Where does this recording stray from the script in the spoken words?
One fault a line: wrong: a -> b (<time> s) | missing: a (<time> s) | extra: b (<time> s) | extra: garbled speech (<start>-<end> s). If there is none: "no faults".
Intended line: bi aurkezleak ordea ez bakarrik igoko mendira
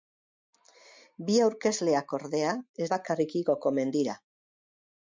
no faults